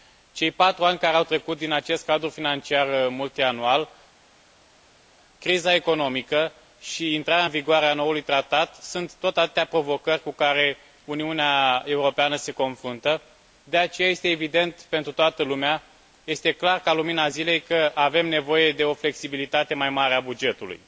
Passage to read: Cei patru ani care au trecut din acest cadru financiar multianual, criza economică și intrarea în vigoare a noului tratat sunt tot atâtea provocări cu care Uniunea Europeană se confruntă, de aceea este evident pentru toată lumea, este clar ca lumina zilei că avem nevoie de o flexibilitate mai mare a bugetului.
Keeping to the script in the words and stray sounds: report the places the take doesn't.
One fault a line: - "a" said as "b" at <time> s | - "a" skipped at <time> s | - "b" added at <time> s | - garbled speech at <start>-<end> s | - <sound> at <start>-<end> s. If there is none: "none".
none